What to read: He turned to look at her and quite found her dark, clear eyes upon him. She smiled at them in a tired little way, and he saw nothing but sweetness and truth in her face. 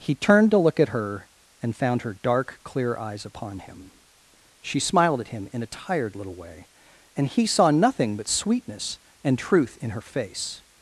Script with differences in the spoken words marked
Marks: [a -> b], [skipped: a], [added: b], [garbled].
He turned to look at her and [skipped: quite] found her dark, clear eyes upon him. She smiled at [them -> him] in a tired little way, and he saw nothing but sweetness and truth in her face.